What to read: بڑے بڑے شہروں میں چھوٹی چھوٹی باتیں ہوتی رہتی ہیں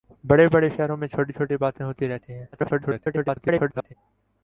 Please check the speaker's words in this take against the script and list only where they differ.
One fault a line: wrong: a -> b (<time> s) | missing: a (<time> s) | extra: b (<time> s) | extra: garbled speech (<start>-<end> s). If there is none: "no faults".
extra: garbled speech (2.5-3.9 s)